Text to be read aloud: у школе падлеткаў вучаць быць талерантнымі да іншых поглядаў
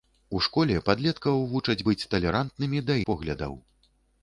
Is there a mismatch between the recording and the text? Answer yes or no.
yes